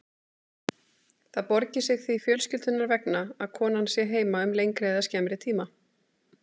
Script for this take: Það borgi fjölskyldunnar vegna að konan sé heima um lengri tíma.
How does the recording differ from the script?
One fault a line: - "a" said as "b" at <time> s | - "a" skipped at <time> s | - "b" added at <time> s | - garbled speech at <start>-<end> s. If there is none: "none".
- "sig því" added at 1.9 s
- "eða skemmri" added at 4.9 s